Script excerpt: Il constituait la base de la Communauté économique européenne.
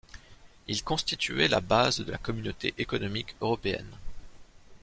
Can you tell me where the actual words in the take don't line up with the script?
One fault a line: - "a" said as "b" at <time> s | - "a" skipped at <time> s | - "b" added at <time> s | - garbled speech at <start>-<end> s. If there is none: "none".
none